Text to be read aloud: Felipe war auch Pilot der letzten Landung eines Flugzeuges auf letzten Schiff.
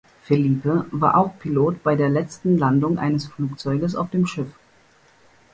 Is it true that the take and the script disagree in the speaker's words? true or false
true